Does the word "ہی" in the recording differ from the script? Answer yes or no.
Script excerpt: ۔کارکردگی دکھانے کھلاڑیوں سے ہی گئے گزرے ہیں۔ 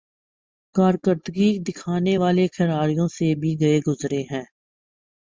yes